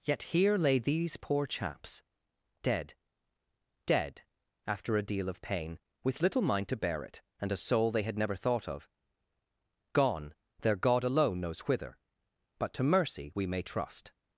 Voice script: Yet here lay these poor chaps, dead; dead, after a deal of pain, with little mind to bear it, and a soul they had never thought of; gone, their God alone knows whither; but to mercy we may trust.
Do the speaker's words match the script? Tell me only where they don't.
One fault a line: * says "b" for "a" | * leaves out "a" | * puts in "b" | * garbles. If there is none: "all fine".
all fine